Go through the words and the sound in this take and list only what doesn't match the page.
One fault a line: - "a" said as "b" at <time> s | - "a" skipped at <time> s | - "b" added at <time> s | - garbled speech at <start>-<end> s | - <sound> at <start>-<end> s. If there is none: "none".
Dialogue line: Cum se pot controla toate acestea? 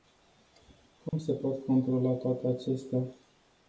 - dropout at 1.1-1.1 s